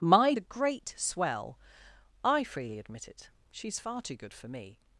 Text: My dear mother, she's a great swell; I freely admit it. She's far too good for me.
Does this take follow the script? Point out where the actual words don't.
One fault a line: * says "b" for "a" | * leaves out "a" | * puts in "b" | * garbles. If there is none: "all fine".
* leaves out "dear mother she's"